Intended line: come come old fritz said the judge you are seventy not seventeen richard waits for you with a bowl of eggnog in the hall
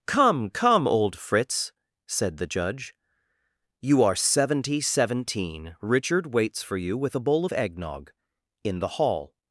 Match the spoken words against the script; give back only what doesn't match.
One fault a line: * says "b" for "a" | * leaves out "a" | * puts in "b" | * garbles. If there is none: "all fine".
* leaves out "not"